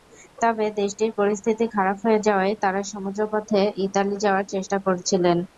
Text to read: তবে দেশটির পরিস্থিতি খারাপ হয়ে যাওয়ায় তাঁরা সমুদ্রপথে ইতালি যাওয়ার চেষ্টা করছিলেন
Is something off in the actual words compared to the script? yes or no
no